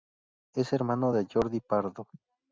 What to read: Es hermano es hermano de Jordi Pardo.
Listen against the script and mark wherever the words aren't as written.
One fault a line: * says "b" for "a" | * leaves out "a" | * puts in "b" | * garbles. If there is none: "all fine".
* leaves out "es hermano"